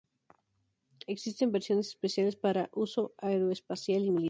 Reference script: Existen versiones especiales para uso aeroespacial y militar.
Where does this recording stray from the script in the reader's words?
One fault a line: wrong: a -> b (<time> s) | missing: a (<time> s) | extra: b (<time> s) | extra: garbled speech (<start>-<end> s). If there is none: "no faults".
no faults